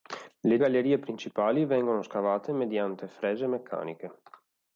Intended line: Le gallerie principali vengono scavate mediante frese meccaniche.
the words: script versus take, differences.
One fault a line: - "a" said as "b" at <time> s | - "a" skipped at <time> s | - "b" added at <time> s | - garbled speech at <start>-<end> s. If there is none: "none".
none